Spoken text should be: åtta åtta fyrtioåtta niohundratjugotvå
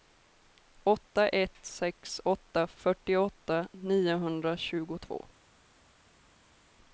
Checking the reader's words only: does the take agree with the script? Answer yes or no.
no